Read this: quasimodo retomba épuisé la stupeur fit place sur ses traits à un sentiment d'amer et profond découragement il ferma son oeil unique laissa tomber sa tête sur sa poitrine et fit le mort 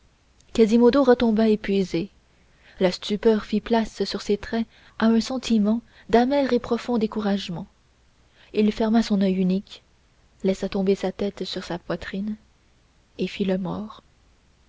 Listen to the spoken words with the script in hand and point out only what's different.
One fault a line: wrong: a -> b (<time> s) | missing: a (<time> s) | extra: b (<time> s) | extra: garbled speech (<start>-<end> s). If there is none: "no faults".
no faults